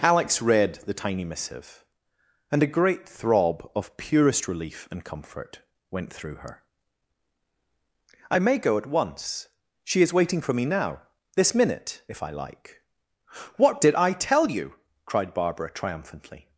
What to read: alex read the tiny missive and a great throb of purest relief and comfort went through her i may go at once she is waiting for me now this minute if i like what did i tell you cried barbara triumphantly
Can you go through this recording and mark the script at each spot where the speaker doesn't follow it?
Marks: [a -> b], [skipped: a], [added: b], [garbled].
alex read the tiny missive and a great throb of purest relief and comfort went through her i may go at once she is waiting for me now this minute if i like what did i tell you cried barbara triumphantly